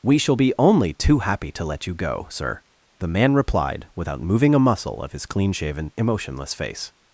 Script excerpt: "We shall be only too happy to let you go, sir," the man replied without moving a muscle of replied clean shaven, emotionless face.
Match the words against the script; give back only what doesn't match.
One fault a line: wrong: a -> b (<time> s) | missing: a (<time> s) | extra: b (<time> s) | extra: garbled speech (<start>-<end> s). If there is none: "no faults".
wrong: replied -> his (5.1 s)